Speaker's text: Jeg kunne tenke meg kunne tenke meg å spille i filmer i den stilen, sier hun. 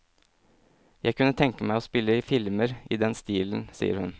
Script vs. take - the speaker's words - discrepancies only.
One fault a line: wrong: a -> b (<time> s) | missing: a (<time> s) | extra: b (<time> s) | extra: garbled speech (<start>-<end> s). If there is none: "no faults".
missing: kunne tenke meg (1.8 s)